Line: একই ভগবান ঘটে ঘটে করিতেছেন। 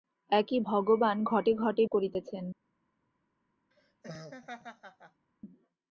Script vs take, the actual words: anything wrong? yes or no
no